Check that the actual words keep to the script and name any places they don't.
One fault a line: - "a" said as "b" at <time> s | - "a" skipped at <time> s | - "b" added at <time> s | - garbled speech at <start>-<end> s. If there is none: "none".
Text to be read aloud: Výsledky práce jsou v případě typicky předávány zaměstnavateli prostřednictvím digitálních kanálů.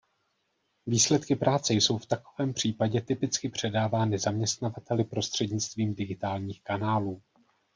- "takovém" added at 2.0 s